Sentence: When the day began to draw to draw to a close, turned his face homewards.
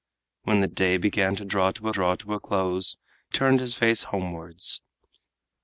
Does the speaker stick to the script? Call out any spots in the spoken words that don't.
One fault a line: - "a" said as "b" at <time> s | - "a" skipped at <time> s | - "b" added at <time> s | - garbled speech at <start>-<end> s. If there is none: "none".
none